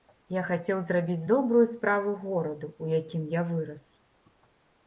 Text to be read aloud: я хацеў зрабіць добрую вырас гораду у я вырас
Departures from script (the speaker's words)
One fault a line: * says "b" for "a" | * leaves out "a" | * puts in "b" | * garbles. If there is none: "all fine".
* says "справу" for "вырас"
* puts in "якім"